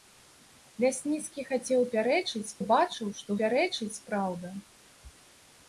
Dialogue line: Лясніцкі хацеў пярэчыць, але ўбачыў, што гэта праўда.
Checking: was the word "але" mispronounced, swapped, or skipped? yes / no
yes